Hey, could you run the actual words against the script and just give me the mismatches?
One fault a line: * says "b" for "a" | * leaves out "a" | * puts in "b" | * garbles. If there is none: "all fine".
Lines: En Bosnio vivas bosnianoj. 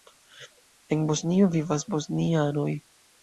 all fine